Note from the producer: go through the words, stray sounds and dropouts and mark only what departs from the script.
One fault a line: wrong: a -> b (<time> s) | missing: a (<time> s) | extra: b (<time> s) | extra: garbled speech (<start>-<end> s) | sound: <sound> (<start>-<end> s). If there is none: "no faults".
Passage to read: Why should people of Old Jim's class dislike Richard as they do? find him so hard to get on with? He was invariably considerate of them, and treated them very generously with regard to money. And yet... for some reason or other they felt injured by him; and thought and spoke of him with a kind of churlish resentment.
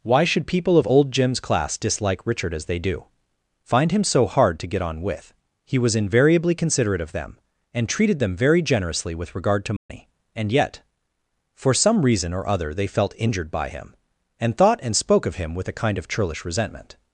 sound: dropout (9.8-9.9 s)